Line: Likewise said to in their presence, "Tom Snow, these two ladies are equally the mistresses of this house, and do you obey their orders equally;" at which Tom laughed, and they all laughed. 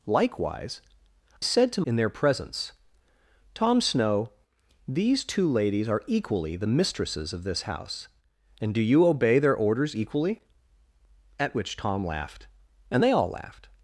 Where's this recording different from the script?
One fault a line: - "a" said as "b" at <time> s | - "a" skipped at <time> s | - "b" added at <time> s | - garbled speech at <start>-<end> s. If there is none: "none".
none